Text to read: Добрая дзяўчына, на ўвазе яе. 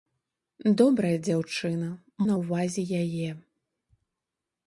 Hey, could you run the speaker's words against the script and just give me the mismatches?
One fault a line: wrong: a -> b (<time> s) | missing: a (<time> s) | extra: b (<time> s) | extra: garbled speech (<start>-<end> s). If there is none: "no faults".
no faults